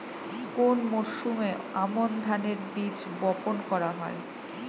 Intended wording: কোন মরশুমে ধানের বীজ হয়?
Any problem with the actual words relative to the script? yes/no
yes